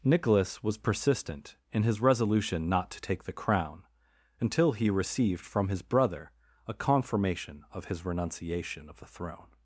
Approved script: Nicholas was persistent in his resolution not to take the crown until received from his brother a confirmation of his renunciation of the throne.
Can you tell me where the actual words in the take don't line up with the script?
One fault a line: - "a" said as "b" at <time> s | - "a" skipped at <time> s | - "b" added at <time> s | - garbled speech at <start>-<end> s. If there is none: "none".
- "he" added at 4.7 s